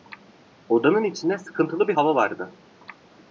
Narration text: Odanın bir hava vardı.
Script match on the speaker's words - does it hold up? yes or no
no